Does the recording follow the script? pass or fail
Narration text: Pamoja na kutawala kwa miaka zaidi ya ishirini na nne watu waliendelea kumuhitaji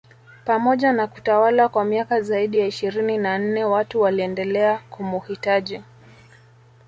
pass